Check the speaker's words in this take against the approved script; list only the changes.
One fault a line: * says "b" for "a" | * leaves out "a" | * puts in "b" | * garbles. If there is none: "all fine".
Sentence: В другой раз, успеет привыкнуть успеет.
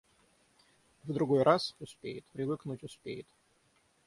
all fine